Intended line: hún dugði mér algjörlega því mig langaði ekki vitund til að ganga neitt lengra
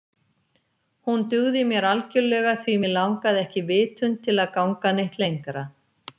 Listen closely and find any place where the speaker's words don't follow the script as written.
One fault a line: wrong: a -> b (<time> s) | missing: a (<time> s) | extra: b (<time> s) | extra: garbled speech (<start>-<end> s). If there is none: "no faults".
no faults